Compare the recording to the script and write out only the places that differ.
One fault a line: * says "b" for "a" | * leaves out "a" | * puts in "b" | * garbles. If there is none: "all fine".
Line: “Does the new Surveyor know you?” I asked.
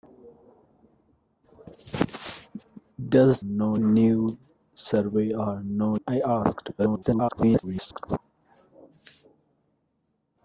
* says "know" for "the"
* leaves out "you"
* garbles